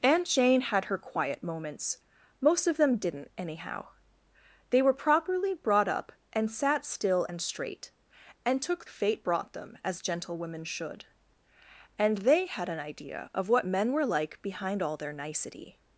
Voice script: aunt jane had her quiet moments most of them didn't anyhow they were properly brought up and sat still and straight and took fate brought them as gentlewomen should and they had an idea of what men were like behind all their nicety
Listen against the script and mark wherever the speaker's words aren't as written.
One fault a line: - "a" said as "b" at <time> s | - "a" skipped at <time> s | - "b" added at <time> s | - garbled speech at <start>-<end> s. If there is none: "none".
none